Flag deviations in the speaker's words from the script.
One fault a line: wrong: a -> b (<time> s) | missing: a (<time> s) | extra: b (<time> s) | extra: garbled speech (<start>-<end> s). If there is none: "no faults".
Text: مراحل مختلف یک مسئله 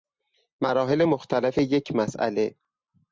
no faults